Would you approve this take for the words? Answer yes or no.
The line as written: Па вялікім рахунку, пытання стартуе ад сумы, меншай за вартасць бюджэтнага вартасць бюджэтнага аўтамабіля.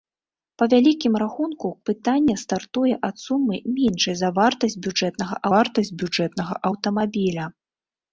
yes